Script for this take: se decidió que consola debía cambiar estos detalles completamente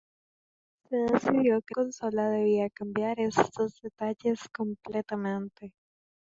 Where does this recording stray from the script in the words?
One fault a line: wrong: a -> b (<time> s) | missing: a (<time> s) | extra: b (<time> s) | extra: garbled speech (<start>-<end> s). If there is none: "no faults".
no faults